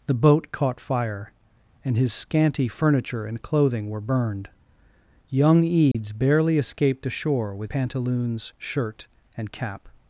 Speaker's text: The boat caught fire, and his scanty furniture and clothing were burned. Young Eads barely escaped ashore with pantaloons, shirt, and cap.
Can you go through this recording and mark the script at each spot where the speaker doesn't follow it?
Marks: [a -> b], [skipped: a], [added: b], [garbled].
The boat caught fire, and his scanty furniture and clothing were burned. Young Eads barely escaped ashore with pantaloons, shirt, and cap.